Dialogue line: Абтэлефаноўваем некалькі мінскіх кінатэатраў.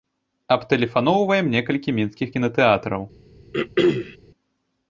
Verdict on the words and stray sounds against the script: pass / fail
fail